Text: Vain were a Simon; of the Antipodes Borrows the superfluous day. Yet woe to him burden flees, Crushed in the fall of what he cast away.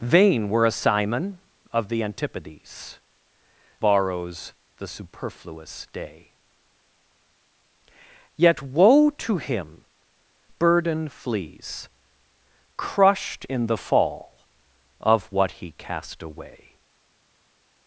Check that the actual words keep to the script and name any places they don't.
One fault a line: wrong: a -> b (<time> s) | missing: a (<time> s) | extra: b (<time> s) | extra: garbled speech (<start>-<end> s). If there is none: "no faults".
no faults